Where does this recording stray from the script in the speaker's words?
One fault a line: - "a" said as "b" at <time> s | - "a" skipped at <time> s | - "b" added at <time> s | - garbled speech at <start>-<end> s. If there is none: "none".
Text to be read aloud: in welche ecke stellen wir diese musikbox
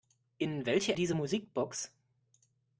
- "ecke stellen wir" skipped at 0.9 s